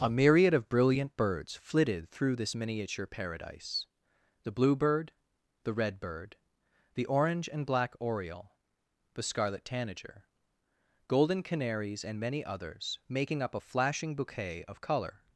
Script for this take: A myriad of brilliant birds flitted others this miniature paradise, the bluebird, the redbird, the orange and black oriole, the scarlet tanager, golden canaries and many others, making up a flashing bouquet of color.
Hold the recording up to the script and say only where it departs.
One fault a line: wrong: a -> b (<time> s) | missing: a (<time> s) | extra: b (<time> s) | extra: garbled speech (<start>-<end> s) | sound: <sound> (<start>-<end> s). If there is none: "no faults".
wrong: others -> through (2.1 s)